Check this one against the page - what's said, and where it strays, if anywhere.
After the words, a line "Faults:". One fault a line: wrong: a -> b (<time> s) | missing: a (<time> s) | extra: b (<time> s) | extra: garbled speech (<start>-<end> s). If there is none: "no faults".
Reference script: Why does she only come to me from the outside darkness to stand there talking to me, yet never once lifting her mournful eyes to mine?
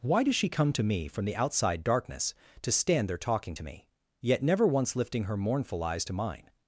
Why does she come to me from the outside darkness to stand there talking to me, yet never once lifting her mournful eyes to mine?
Faults:
missing: only (0.5 s)